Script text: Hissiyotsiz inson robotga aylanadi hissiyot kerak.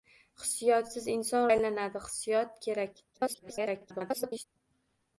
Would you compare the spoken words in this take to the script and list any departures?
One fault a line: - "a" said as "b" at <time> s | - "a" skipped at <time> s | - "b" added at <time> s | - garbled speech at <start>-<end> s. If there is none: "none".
- "robotga" skipped at 1.4 s
- garbled speech at 3.1-4.4 s